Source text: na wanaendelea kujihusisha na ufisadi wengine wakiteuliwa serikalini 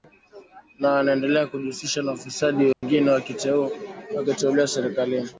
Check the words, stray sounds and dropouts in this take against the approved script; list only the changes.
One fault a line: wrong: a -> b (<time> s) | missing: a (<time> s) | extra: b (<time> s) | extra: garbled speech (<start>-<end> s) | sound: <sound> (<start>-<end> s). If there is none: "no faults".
sound: dropout (2.7-2.8 s)